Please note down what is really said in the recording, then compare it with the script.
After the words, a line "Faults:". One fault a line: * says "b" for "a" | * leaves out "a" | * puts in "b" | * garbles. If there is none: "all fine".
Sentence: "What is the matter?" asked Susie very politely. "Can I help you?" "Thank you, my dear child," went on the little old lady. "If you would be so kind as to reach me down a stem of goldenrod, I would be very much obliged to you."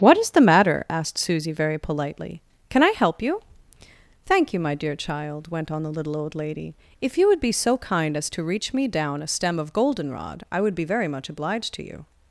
"What is the matter?" asked Susie very politely. "Can I help you?" "Thank you, my dear child," went on the little old lady. "If you would be so kind as to reach me down a stem of goldenrod, I would be very much obliged to you."
Faults:
all fine